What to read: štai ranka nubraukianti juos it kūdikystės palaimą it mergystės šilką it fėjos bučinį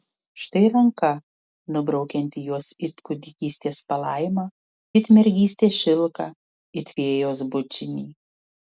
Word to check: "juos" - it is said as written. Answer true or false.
true